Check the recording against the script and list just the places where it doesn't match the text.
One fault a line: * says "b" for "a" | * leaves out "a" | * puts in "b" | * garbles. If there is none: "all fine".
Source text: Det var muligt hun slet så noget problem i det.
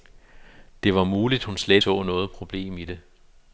all fine